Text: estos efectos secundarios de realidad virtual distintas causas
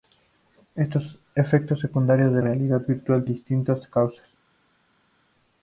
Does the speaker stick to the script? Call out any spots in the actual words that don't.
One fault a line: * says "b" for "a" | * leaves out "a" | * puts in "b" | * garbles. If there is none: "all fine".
all fine